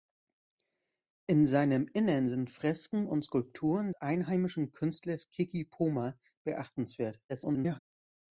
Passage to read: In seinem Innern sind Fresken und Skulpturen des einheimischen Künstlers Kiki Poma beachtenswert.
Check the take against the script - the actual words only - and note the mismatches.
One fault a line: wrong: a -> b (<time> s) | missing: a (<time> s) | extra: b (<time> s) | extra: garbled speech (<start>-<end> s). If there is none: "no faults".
missing: des (3.9 s)
extra: garbled speech (7.3-7.8 s)